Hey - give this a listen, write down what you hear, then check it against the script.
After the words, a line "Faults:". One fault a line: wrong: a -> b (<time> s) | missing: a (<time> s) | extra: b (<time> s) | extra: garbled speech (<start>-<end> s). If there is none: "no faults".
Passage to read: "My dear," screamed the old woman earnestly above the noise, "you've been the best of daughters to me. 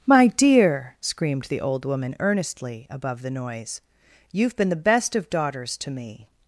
"My dear," screamed the old woman earnestly above the noise, "you've been the best of daughters to me.
Faults:
no faults